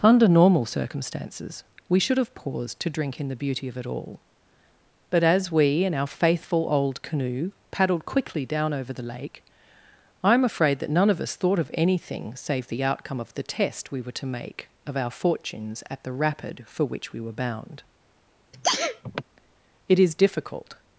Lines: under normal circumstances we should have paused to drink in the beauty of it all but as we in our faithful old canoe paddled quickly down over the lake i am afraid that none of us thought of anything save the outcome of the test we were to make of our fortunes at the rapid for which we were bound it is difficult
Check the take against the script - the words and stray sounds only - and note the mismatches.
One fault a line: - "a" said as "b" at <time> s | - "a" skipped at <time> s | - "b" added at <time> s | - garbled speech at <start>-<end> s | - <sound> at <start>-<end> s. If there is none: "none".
- sneeze at 18.5-19.2 s